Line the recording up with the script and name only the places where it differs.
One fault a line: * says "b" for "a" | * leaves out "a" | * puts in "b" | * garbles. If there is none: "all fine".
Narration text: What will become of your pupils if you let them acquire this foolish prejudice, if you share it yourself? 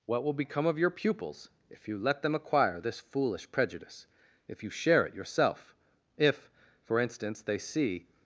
* puts in "If for instance they see"